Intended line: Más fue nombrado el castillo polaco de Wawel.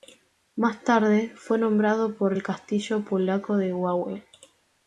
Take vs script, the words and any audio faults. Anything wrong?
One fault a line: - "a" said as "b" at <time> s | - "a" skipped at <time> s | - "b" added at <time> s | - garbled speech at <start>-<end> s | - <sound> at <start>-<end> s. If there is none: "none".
- "tarde" added at 0.8 s
- "por" added at 2.1 s